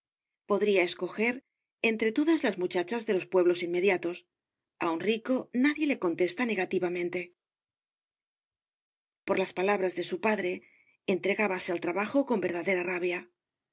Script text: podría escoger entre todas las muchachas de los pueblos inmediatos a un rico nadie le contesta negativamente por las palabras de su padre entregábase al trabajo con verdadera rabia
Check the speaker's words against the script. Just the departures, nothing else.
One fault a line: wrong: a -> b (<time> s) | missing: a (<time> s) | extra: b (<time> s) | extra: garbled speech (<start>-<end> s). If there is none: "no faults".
no faults